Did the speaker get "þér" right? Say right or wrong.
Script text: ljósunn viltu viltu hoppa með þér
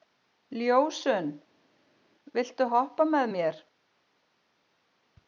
wrong